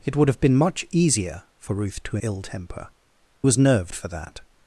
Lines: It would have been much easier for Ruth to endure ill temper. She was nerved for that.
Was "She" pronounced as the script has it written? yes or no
no